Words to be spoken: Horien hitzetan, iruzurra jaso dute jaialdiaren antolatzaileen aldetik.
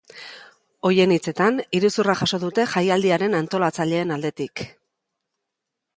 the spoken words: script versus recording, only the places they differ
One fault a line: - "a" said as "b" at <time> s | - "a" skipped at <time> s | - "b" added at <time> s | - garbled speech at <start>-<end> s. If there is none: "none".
none